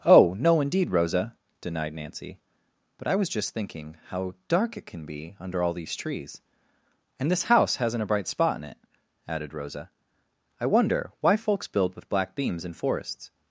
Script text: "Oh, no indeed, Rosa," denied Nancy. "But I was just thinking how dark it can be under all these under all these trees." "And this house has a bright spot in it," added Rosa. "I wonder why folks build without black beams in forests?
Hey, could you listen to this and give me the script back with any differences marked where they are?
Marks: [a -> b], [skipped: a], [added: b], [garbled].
"Oh, no indeed, Rosa," denied Nancy. "But I was just thinking how dark it can be under all these [skipped: under all these] trees." "And this house [has -> hasn't] a bright spot in it," added Rosa. "I wonder why folks build [without -> with] black beams in forests?